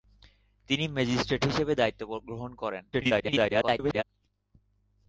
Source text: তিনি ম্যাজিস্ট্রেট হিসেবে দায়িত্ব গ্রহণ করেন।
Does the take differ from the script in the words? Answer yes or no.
yes